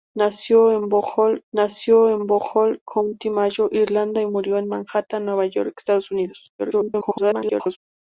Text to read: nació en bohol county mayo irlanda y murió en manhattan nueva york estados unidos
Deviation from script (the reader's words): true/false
true